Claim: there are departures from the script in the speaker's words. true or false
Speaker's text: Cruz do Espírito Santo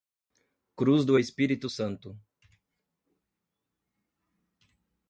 false